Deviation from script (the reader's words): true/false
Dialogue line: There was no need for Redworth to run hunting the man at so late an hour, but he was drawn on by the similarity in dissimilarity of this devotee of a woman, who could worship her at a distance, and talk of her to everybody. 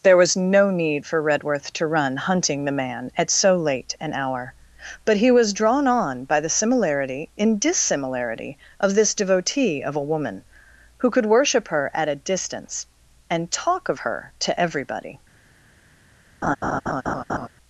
false